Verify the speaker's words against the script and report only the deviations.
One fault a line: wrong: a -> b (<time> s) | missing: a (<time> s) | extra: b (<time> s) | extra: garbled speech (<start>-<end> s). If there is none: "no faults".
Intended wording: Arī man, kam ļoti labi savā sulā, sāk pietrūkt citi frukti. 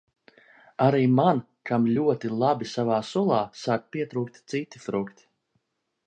no faults